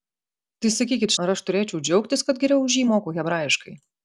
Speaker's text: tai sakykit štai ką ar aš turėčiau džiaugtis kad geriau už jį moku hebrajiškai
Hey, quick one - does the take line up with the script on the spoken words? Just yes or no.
no